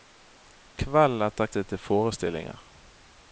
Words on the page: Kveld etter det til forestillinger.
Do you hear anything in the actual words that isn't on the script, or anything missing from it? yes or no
no